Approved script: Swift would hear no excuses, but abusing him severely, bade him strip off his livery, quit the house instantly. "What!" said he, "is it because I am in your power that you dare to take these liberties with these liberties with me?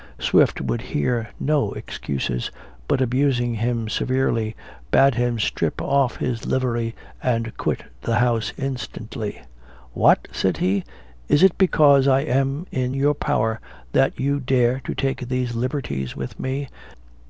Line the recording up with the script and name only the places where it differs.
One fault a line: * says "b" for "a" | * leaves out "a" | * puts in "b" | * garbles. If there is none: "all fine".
* puts in "and"
* leaves out "these liberties with"